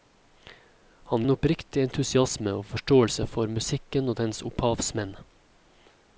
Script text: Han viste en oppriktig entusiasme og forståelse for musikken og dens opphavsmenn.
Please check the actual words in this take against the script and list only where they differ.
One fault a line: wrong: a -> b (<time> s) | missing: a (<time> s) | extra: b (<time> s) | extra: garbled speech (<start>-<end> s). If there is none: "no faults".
missing: viste (1.2 s)